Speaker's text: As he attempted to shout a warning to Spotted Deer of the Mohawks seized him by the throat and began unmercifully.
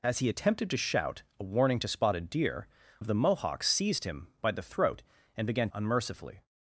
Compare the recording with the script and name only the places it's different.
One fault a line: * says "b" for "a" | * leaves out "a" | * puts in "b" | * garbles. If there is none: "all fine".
all fine